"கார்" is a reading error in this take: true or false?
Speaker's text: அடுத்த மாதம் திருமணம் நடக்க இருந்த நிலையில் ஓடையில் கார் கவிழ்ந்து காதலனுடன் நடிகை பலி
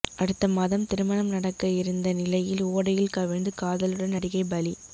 true